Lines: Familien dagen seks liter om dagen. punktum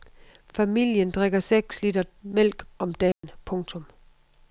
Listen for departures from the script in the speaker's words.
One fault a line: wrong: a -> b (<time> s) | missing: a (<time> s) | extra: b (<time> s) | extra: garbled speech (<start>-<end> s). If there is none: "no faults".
wrong: dagen -> drikker (1.1 s)
extra: mælk (2.2 s)